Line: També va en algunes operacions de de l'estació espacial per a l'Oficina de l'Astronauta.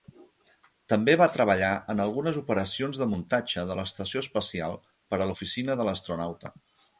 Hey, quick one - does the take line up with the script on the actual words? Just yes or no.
no